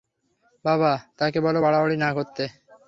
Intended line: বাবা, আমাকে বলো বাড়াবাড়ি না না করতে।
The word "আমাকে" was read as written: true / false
false